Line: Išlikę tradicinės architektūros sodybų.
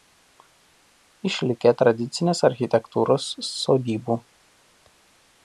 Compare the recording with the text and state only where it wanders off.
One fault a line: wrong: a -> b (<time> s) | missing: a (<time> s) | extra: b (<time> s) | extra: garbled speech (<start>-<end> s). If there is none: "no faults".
no faults